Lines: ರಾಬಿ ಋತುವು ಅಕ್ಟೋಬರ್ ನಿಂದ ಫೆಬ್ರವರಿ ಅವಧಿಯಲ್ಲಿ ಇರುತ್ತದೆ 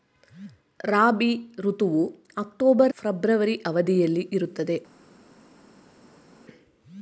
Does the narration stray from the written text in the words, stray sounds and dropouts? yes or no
yes